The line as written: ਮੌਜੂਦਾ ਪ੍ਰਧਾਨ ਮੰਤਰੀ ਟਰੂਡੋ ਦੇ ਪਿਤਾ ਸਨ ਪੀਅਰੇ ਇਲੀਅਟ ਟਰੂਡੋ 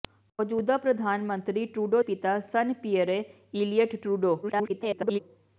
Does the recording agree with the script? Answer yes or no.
no